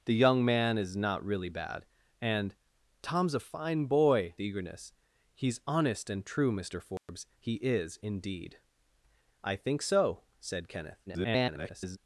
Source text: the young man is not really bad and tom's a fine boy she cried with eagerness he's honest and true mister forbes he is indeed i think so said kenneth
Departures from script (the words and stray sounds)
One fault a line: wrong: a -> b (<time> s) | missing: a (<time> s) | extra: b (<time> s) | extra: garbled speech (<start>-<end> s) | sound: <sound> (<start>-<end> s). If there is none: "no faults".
missing: she cried with (4.3 s)
sound: dropout (7.0-7.1 s)
extra: garbled speech (11.1-12.0 s)